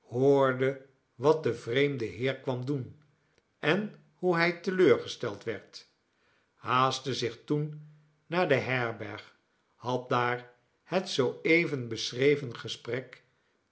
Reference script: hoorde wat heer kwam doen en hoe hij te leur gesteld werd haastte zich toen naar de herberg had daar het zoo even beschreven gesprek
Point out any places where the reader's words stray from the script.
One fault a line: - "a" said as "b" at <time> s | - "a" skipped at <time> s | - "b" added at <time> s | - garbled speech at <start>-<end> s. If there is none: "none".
- "de vreemde" added at 1.4 s